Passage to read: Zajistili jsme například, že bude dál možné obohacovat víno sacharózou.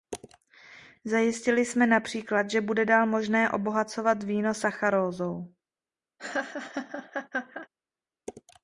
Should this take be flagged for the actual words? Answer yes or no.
no